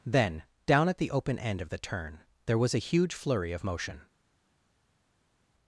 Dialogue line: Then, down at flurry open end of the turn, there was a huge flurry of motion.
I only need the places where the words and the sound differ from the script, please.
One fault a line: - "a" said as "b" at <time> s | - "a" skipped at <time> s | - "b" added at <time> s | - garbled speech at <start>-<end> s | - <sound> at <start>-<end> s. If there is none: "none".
- "flurry" said as "the" at 1.0 s